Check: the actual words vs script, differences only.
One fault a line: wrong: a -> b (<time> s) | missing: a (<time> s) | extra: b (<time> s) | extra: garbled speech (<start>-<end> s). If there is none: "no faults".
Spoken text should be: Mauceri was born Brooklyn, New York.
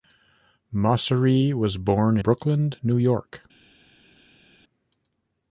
no faults